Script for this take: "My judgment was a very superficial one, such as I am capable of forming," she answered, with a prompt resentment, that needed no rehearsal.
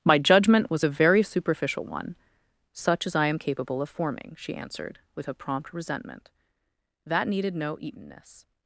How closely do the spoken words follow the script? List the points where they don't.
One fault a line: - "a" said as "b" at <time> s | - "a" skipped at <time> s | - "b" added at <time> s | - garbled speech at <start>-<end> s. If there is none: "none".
- "rehearsal" said as "eatenness" at 7.8 s